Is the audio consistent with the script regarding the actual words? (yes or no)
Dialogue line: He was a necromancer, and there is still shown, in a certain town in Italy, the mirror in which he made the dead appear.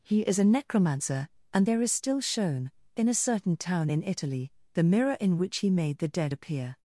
no